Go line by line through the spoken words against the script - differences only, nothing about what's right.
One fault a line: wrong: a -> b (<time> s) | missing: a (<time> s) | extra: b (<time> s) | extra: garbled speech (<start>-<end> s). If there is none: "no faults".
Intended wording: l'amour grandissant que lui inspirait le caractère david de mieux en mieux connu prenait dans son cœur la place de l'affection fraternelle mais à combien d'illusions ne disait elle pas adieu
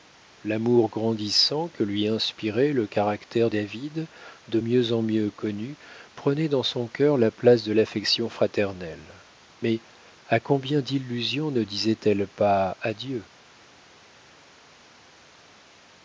no faults